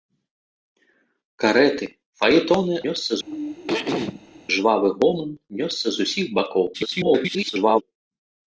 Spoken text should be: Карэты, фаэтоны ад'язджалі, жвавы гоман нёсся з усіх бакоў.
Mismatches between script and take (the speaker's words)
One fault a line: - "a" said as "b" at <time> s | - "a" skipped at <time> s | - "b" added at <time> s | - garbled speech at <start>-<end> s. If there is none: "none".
- "ад'язджалі" said as "нёсся" at 2.9 s
- garbled speech at 6.7-7.8 s